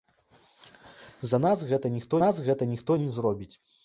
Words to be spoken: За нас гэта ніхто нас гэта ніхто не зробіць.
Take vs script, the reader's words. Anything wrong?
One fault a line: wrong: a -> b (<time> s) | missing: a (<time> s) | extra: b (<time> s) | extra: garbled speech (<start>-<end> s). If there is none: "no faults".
no faults